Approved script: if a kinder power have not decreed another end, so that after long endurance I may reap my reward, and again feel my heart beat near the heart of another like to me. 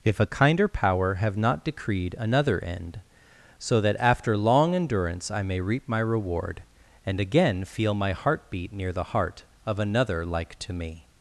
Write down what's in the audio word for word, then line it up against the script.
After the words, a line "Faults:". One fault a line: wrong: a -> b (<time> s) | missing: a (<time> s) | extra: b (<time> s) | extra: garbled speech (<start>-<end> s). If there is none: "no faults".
if a kinder power have not decreed another end, so that after long endurance I may reap my reward, and again feel my heart beat near the heart of another like to me.
Faults:
no faults